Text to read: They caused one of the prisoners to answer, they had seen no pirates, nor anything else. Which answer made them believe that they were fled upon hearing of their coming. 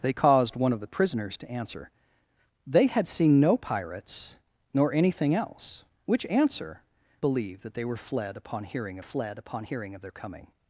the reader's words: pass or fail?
fail